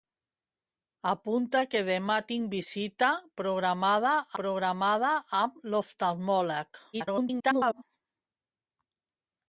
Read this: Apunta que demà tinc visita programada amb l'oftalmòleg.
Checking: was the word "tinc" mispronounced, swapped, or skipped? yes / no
no